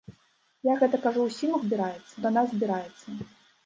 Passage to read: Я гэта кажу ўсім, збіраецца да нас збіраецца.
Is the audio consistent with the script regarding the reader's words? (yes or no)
yes